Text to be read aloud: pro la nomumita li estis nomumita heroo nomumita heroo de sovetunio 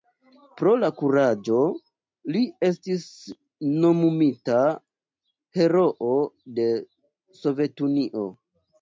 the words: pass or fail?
fail